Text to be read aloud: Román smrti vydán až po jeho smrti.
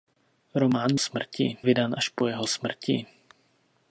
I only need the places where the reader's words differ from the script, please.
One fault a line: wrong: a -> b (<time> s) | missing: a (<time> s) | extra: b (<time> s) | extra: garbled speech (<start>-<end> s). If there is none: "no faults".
no faults